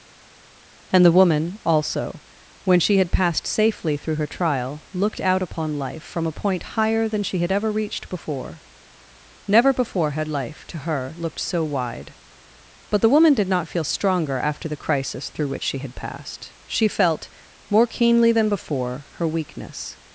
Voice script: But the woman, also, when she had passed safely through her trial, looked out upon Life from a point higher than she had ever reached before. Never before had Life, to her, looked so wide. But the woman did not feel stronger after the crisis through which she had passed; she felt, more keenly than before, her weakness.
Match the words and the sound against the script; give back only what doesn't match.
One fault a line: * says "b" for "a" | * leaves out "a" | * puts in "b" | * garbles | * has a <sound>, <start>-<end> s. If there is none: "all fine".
* says "And" for "But"